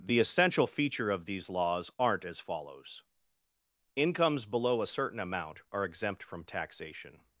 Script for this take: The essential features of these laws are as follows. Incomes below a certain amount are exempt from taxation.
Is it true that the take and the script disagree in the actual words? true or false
true